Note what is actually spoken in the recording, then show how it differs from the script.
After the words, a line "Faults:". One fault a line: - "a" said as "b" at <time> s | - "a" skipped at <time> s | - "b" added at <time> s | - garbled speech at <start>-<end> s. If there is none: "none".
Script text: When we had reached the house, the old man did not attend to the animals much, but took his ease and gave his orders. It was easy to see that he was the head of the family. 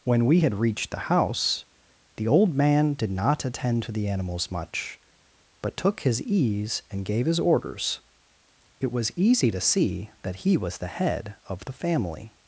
When we had reached the house, the old man did not attend to the animals much, but took his ease and gave his orders. It was easy to see that he was the head of the family.
Faults:
none